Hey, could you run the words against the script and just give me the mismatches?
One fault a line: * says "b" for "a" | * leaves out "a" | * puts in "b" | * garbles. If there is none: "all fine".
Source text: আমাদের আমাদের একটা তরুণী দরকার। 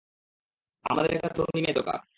* leaves out "আমাদের"
* puts in "মেয়ে"